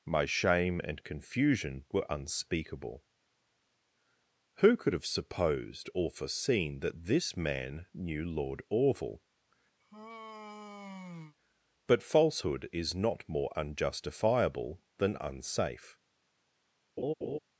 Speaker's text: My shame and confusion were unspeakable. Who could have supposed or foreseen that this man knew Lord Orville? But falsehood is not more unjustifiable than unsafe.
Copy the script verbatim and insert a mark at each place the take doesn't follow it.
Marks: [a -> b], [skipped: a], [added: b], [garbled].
My shame and confusion were unspeakable. Who could have supposed or foreseen that this man knew Lord Orville? But falsehood is not more unjustifiable than unsafe.